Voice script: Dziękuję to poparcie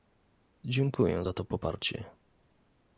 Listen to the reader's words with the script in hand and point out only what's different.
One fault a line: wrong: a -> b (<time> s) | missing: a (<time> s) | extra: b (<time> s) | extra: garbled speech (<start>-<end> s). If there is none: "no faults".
extra: za (1.2 s)